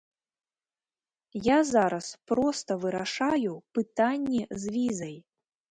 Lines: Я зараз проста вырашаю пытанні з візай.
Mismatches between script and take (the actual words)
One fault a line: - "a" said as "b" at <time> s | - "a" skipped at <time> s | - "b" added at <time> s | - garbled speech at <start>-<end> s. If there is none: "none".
none